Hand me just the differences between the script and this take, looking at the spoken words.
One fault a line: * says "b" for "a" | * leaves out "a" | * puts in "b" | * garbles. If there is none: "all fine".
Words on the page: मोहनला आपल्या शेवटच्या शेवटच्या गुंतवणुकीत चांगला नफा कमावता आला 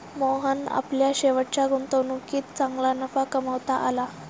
* leaves out "शेवटच्या"